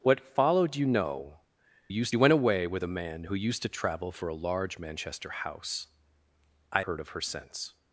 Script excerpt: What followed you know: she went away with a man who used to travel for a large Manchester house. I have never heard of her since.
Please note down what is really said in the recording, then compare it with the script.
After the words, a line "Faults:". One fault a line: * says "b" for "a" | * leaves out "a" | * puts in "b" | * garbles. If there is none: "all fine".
What followed you know: used went away with a man who used to travel for a large Manchester house. I heard of her since.
Faults:
* says "used" for "she"
* leaves out "have never"